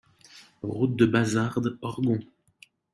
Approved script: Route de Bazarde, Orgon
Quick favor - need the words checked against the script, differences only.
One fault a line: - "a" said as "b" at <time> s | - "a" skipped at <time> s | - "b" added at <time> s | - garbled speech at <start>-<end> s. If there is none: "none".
none